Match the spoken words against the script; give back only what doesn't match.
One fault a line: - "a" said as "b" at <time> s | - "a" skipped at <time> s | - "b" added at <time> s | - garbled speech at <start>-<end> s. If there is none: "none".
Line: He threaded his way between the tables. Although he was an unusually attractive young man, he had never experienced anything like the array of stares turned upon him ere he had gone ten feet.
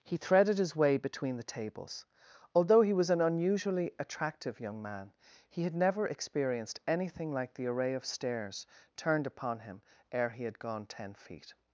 none